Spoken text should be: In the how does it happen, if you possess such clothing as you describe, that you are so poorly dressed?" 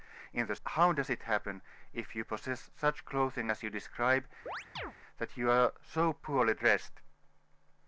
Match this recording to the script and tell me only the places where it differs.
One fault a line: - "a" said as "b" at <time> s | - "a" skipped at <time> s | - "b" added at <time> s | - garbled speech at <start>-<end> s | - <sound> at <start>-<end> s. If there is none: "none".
- chirp at 4.5-4.9 s